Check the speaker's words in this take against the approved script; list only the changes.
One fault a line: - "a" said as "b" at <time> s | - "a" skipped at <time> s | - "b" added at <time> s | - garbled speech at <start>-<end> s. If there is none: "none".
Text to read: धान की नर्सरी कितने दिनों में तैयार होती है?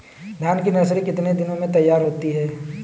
none